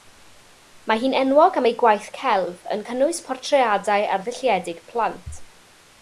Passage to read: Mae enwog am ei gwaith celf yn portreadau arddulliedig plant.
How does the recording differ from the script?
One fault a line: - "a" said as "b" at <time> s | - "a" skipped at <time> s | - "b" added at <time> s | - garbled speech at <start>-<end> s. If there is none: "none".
- "hi'n" added at 1.0 s
- "cynnwys" added at 2.9 s